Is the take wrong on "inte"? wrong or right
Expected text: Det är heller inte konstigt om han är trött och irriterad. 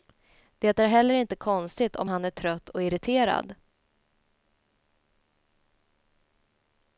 right